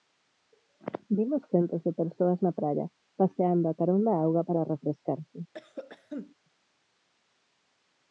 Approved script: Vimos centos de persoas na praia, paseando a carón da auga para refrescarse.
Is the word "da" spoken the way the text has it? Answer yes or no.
yes